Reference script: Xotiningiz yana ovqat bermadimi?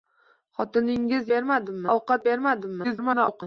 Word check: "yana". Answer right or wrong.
wrong